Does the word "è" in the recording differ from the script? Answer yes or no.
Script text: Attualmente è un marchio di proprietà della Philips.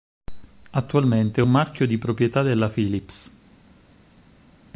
no